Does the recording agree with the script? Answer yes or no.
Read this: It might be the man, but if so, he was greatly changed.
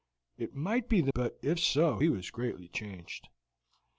no